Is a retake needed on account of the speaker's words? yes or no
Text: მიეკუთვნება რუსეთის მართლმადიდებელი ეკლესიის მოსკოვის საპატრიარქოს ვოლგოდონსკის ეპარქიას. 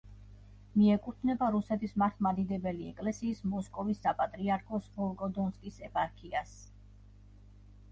no